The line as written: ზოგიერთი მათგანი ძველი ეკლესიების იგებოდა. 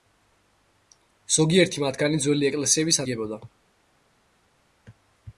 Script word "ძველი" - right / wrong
right